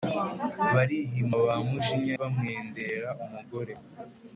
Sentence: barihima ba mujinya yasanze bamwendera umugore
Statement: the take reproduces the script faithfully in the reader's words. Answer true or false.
false